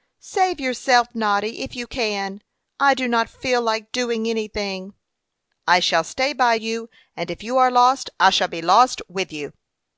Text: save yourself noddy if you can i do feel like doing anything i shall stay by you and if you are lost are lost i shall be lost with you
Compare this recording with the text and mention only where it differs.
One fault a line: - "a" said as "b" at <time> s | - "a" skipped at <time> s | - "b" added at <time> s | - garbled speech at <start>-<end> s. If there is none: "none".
- "not" added at 3.1 s
- "are lost" skipped at 8.1 s